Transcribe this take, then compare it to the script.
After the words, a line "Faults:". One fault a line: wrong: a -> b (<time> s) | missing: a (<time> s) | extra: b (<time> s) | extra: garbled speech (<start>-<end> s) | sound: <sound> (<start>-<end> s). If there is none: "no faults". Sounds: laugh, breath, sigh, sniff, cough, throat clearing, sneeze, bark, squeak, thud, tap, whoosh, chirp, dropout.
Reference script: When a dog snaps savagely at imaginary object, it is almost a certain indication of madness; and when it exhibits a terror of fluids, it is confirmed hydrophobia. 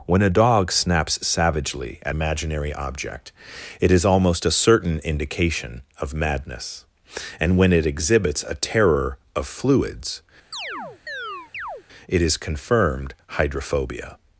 When a dog snaps savagely at imaginary object, it is almost a certain indication of madness; and when it exhibits a terror of fluids, it is confirmed hydrophobia.
Faults:
sound: chirp (10.5-11.8 s)